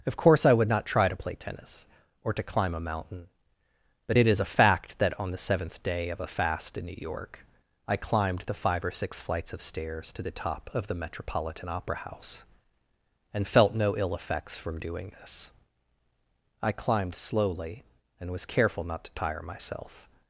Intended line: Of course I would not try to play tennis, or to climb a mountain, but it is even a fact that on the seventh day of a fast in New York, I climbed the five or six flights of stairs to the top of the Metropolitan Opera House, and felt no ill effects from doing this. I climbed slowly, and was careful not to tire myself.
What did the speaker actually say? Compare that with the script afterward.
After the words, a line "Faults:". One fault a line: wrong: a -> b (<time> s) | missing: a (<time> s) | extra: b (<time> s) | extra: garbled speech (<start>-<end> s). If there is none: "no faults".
Of course I would not try to play tennis, or to climb a mountain, but it is a fact that on the seventh day of a fast in New York, I climbed the five or six flights of stairs to the top of the Metropolitan Opera House, and felt no ill effects from doing this. I climbed slowly, and was careful not to tire myself.
Faults:
missing: even (4.4 s)